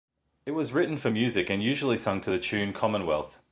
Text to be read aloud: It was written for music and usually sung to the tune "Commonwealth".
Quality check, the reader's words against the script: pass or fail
pass